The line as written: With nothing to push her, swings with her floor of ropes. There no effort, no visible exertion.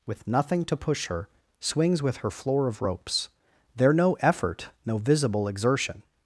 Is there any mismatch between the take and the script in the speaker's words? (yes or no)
no